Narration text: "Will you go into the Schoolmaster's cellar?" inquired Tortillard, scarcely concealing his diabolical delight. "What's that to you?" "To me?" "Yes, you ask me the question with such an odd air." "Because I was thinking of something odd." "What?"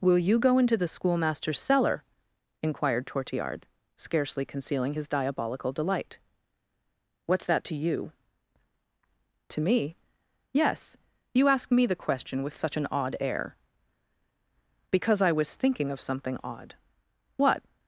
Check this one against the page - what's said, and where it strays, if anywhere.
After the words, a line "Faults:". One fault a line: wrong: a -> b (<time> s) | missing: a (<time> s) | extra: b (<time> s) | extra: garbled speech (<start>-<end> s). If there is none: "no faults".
"Will you go into the Schoolmaster's cellar?" inquired Tortillard, scarcely concealing his diabolical delight. "What's that to you?" "To me?" "Yes, you ask me the question with such an odd air." "Because I was thinking of something odd." "What?"
Faults:
no faults